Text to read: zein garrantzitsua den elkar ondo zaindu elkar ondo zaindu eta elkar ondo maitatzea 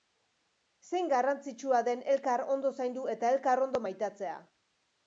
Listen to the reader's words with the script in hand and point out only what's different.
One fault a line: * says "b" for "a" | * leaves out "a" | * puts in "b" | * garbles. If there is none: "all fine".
* leaves out "elkar ondo zaindu"